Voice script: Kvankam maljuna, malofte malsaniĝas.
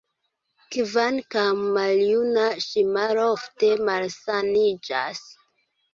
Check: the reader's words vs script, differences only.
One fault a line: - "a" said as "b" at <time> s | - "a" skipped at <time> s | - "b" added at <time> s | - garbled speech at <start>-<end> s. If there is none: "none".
- "ŝi" added at 2.7 s